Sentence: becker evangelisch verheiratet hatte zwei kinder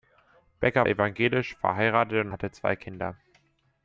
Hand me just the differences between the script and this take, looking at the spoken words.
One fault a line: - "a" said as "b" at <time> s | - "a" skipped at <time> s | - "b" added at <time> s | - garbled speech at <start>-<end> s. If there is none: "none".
none